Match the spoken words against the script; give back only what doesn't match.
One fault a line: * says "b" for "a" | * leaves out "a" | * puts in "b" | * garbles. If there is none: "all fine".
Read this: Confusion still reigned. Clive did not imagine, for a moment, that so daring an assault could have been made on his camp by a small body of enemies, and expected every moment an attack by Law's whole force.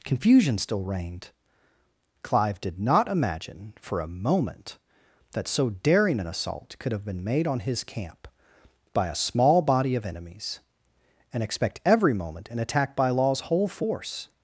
* says "expect" for "expected"